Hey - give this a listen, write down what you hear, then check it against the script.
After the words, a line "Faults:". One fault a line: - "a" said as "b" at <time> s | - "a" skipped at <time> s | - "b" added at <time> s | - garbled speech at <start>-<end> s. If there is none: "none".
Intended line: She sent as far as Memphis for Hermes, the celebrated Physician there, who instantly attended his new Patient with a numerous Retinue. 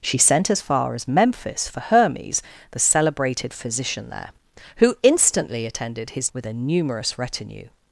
She sent as far as Memphis for Hermes, the celebrated Physician there, who instantly attended his with a numerous Retinue.
Faults:
- "new Patient" skipped at 6.3 s